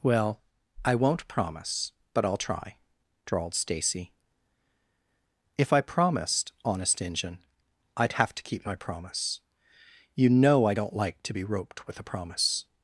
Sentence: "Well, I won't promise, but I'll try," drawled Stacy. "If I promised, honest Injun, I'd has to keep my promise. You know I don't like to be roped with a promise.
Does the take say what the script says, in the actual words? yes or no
no